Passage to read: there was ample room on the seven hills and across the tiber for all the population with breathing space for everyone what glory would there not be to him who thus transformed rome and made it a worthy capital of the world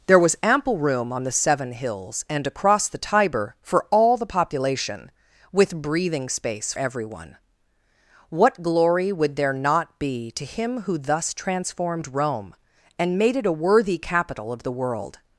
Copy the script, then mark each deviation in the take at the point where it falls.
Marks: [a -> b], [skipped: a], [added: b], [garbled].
there was ample room on the seven hills and across the tiber for all the population with breathing space [skipped: for] everyone what glory would there not be to him who thus transformed rome and made it a worthy capital of the world